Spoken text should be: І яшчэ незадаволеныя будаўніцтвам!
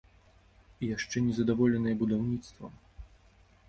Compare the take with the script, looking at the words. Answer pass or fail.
pass